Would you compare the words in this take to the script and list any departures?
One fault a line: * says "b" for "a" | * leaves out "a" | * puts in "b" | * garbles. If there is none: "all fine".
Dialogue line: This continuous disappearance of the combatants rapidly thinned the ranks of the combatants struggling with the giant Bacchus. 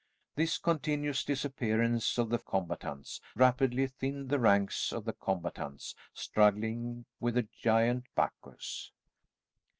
all fine